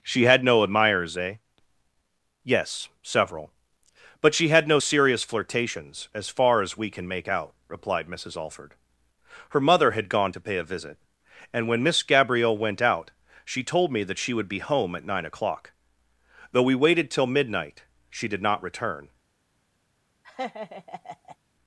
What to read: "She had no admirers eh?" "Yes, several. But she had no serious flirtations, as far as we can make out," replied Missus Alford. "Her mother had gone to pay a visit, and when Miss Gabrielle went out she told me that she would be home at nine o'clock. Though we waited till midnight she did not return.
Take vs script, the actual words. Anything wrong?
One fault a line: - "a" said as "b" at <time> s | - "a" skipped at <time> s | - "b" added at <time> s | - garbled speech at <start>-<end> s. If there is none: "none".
none